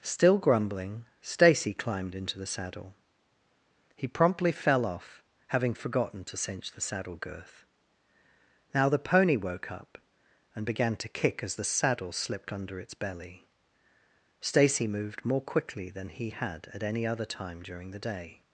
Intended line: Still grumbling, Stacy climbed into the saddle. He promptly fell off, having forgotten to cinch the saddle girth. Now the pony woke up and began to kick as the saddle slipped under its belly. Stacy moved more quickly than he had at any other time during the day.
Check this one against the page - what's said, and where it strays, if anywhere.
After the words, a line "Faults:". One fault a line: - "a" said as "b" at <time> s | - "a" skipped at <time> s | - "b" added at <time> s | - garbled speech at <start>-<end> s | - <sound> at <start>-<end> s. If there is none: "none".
Still grumbling, Stacy climbed into the saddle. He promptly fell off, having forgotten to cinch the saddle girth. Now the pony woke up and began to kick as the saddle slipped under its belly. Stacy moved more quickly than he had at any other time during the day.
Faults:
none